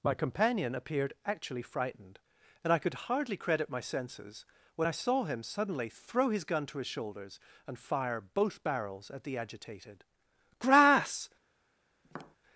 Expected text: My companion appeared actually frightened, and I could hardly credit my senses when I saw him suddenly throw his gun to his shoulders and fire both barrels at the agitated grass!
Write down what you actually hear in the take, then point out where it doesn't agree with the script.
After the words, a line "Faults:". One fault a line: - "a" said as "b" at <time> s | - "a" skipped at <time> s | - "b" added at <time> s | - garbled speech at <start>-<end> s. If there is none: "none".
My companion appeared actually frightened, and I could hardly credit my senses when I saw him suddenly throw his gun to his shoulders and fire both barrels at the agitated grass!
Faults:
none